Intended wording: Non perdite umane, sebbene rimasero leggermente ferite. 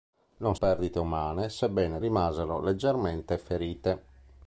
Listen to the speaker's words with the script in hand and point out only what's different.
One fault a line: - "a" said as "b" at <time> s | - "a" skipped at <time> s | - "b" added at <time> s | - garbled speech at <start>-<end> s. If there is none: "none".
none